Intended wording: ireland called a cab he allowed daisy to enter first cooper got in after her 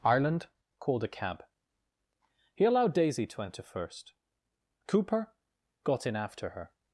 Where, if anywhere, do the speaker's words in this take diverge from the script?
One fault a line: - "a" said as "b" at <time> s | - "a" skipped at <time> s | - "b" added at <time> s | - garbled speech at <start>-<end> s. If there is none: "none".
none